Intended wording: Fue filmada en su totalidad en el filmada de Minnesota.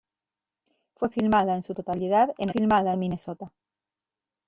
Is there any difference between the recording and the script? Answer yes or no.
no